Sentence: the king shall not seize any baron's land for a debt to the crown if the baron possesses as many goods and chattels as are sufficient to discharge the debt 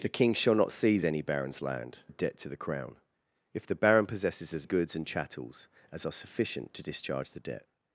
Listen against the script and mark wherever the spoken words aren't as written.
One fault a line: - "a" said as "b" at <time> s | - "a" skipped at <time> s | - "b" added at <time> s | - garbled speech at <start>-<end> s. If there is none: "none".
- "for" skipped at 2.0 s
- "many" skipped at 4.7 s